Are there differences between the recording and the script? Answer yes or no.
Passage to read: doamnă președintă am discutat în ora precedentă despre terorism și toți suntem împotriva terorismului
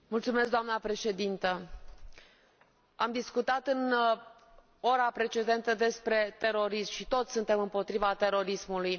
no